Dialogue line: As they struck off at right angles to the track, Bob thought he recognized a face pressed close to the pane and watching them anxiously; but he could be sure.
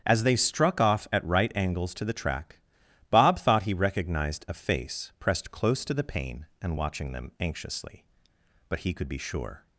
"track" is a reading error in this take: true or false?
false